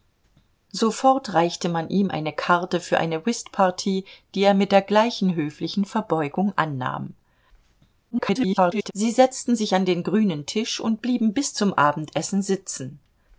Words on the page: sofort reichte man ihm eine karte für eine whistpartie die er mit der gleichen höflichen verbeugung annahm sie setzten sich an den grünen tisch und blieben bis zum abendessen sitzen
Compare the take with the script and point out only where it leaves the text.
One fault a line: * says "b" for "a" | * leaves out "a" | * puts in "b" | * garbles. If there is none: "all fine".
* garbles